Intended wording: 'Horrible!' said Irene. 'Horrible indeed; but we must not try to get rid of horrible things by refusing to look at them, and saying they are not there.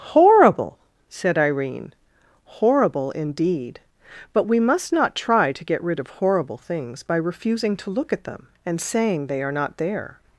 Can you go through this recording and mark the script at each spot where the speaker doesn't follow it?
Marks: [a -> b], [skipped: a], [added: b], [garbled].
'Horrible!' said Irene. 'Horrible indeed; but we must not try to get rid of horrible things by refusing to look at them, and saying they are not there.